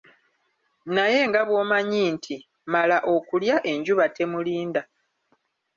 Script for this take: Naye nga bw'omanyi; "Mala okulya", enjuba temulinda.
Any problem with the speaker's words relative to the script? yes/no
yes